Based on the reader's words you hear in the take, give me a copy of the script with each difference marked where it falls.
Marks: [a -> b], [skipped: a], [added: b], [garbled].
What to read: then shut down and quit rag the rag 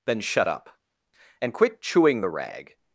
then shut [down -> up] and quit [rag -> chewing] the rag